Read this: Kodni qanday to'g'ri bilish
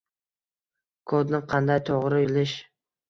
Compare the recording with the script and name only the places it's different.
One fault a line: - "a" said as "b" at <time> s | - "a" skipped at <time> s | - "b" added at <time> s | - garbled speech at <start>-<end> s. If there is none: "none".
none